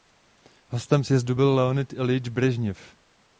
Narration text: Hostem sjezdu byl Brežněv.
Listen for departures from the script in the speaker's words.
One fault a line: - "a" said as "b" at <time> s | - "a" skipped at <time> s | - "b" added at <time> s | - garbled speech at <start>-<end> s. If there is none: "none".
- "Leonid Iljič" added at 1.5 s